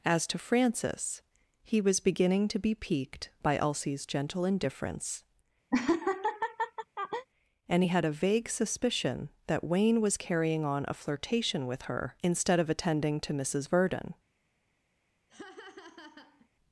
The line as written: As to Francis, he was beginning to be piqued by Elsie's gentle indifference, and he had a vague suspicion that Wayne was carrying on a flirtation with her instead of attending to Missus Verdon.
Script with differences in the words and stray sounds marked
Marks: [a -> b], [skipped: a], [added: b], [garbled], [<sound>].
As to Francis, he was beginning to be piqued by Elsie's gentle indifference, [laugh] and he had a vague suspicion that Wayne was carrying on a flirtation with her instead of attending to Missus Verdon. [laugh]